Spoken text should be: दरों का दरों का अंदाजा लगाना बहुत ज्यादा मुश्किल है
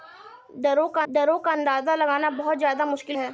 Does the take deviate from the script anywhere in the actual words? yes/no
no